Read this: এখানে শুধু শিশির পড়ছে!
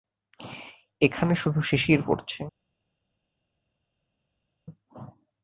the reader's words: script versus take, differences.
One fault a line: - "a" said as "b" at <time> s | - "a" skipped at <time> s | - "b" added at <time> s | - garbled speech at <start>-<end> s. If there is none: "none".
none